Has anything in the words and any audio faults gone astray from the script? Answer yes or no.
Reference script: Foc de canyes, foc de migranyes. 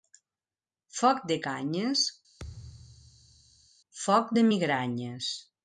yes